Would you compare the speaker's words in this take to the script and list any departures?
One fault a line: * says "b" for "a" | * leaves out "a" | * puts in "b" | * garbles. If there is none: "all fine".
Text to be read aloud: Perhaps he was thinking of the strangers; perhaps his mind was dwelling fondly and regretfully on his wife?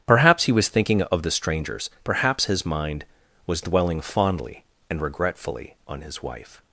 all fine